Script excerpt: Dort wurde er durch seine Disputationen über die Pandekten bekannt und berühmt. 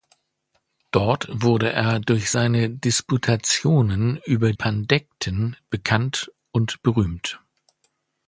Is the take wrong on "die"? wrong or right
wrong